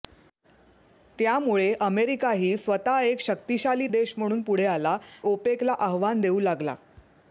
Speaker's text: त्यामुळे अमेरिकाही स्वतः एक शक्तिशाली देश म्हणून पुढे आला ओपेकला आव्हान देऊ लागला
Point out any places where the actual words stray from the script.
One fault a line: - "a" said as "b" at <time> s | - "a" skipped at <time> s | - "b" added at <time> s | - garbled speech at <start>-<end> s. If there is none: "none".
none